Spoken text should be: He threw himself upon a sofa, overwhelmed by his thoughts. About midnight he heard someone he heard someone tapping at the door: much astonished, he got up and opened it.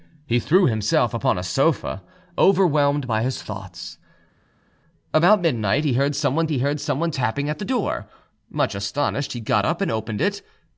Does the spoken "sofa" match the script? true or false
true